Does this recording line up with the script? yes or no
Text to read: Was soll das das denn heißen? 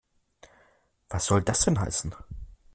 no